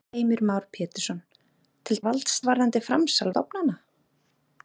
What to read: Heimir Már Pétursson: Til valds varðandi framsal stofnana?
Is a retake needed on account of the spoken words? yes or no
no